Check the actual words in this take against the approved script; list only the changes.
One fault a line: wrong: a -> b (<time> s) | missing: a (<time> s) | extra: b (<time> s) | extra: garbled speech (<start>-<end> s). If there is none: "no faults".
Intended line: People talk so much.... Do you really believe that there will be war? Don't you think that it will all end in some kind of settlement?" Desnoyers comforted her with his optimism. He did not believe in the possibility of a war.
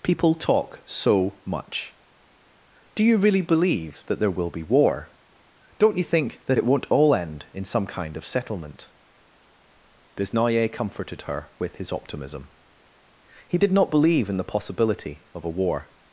wrong: will -> won't (6.6 s)